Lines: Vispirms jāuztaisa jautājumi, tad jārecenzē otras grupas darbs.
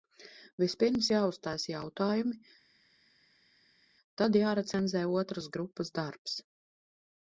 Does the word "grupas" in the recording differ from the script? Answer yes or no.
no